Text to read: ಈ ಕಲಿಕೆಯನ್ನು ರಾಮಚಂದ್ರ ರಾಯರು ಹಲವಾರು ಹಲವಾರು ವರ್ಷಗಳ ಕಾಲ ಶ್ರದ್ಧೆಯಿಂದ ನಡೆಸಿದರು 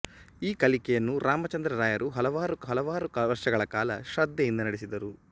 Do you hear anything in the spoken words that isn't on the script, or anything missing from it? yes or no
no